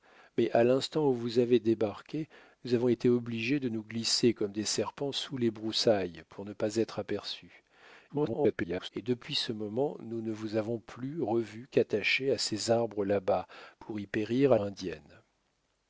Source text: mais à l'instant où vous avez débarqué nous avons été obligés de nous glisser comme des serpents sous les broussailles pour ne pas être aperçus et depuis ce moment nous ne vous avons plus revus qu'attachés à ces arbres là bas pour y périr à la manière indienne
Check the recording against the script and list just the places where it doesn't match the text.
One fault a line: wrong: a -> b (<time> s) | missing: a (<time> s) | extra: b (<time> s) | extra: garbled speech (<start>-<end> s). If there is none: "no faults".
extra: garbled speech (8.1-8.9 s)
missing: la manière (14.6 s)